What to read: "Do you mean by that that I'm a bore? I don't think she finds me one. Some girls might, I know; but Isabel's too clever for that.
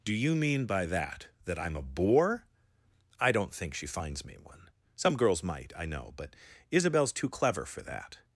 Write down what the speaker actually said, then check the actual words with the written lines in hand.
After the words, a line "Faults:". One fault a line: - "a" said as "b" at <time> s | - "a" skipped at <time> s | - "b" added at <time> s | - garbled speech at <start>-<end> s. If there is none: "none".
"Do you mean by that that I'm a bore? I don't think she finds me one. Some girls might, I know; but Isabel's too clever for that.
Faults:
none